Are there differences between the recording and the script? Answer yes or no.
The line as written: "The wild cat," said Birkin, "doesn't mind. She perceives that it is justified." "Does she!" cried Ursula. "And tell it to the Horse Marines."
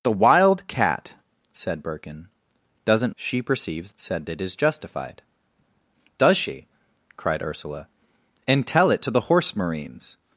yes